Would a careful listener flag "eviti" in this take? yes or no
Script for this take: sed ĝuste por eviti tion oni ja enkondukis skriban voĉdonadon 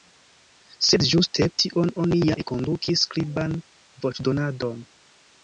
yes